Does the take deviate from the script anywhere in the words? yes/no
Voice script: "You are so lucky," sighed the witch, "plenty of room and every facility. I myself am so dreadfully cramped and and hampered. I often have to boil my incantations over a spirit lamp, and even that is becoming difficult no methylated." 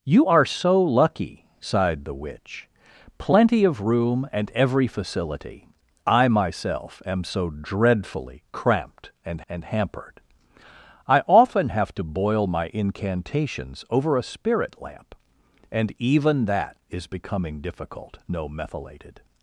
no